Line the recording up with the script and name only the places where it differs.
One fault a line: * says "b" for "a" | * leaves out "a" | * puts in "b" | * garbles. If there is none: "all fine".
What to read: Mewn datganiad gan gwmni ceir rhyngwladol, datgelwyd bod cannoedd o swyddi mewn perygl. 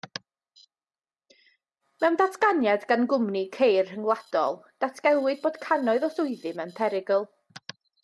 all fine